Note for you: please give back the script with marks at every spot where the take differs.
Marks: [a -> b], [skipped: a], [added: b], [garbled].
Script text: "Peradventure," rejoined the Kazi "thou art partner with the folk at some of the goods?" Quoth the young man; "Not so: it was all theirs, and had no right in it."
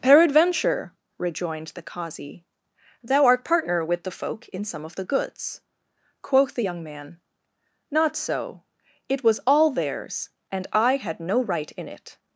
"Peradventure," rejoined the Kazi "thou art partner with the folk [at -> in] some of the goods?" Quoth the young man; "Not so: it was all theirs, and [added: I] had no right in it."